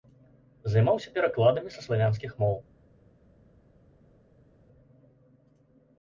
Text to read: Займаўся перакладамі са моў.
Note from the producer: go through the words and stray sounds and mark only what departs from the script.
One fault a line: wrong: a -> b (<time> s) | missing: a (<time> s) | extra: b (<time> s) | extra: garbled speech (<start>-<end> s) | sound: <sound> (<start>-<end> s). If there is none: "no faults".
extra: славянскіх (1.8 s)